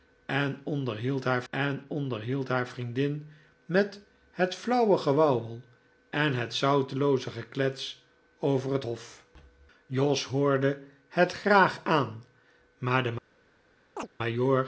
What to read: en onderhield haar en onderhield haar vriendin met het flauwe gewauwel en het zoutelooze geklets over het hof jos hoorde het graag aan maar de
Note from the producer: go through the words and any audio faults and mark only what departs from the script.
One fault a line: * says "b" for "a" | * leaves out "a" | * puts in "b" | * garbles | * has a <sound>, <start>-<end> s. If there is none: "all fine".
* has a chirp, 14.0-14.1 s